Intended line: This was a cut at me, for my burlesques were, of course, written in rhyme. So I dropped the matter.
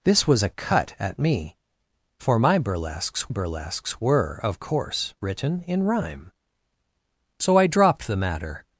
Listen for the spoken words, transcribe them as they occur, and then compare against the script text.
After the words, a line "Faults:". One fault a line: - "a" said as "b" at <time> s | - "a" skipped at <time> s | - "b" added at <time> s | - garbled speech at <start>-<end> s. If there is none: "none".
This was a cut at me, for my burlesques burlesques were, of course, written in rhyme. So I dropped the matter.
Faults:
- "burlesques" added at 3.3 s